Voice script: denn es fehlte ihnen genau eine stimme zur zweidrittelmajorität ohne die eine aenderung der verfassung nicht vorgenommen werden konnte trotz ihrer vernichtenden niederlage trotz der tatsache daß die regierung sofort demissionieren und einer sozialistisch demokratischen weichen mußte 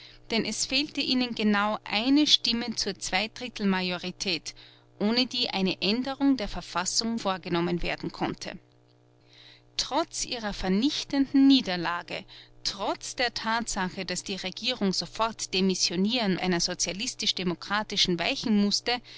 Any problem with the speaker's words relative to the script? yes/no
yes